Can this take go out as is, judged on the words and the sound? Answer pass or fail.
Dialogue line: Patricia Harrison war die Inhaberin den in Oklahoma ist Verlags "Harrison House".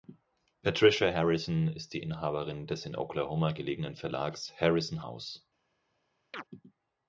fail